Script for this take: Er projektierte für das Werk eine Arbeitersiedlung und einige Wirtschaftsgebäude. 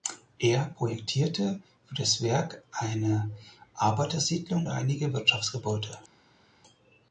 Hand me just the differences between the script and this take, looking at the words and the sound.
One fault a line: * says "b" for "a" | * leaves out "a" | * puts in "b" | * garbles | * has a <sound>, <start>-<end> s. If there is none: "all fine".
* leaves out "und"